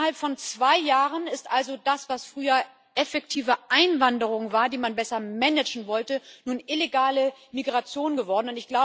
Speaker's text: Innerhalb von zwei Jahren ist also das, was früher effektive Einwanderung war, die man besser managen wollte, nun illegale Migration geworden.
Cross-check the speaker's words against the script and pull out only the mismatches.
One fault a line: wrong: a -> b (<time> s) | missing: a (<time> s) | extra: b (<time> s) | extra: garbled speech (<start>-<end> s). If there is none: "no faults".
no faults